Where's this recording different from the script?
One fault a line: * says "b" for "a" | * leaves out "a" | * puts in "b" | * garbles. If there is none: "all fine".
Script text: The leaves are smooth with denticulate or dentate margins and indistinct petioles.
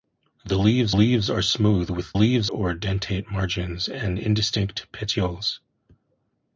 * puts in "leaves"
* says "leaves" for "denticulate"